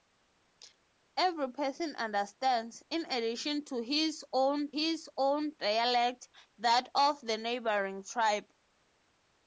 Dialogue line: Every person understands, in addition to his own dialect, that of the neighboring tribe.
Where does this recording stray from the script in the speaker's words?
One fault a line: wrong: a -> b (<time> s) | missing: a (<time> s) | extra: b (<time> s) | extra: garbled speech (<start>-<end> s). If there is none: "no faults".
extra: his own (4.7 s)